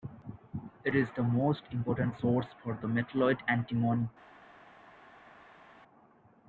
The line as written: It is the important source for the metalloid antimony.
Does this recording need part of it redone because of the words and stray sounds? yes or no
yes